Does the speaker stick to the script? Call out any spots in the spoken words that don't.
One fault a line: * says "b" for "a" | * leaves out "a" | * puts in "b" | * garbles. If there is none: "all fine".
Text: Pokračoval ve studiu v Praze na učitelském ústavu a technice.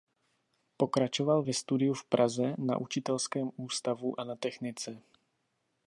* puts in "na"